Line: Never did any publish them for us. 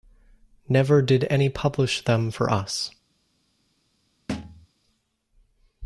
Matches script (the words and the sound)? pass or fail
fail